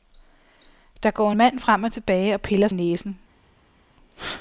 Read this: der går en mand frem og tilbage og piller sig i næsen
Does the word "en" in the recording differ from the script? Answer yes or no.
yes